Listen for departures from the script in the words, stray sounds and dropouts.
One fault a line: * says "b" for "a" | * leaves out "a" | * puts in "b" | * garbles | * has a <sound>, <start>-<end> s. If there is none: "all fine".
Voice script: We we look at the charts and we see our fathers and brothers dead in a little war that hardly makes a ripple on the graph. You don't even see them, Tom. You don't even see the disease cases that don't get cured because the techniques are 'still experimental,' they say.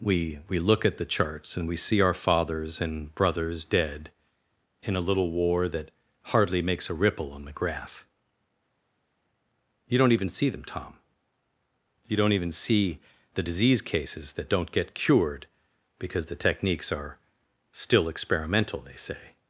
all fine